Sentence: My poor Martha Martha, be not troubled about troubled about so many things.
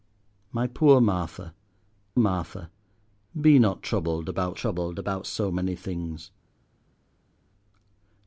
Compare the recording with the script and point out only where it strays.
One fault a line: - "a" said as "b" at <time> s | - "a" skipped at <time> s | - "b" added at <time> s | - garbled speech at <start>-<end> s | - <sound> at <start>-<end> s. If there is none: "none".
none